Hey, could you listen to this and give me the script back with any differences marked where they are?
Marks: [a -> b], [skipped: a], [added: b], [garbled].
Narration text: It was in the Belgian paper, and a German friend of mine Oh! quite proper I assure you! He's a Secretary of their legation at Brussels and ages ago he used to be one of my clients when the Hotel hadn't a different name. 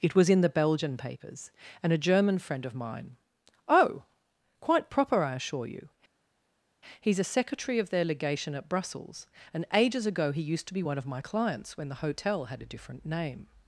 It was in the Belgian [paper, -> papers] and a German friend of mine Oh! quite proper I assure you! He's a Secretary of their legation at Brussels and ages ago he used to be one of my clients when the Hotel [hadn't -> had] a different name.